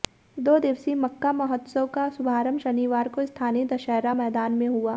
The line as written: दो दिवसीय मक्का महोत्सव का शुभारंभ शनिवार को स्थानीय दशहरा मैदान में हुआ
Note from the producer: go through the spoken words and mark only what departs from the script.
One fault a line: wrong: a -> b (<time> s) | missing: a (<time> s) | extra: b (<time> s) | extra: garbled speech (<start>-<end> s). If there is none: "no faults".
no faults